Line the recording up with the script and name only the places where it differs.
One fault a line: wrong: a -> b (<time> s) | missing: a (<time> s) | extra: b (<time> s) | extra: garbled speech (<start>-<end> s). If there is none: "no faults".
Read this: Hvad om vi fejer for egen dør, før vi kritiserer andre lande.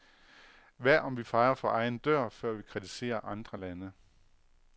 no faults